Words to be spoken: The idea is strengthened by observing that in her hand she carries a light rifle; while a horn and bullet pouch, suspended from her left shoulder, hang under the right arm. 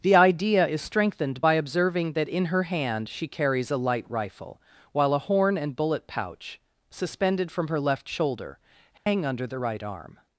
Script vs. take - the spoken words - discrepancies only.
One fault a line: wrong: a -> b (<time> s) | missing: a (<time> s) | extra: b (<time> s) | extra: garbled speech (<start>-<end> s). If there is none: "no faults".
no faults